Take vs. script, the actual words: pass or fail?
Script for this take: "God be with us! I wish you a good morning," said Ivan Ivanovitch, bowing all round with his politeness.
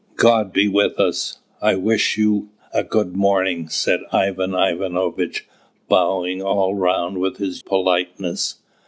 pass